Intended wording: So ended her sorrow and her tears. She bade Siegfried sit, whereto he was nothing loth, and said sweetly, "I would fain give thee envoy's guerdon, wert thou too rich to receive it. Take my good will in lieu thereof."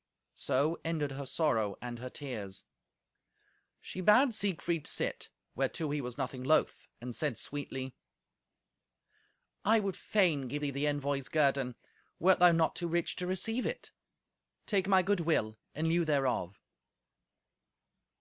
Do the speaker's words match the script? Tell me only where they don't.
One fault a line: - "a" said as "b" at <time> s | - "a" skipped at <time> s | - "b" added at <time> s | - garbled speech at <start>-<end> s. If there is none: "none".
- "the" added at 10.7 s
- "not" added at 12.5 s